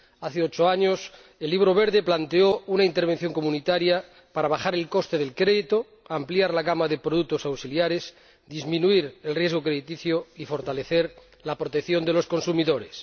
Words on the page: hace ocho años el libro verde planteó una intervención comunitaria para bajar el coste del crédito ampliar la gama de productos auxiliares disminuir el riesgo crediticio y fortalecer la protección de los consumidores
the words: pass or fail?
pass